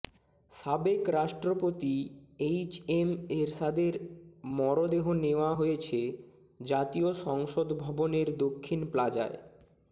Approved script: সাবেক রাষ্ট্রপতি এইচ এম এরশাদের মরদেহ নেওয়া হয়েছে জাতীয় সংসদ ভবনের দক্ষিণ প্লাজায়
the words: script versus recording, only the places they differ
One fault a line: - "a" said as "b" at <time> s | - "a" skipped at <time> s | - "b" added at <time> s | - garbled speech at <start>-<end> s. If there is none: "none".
none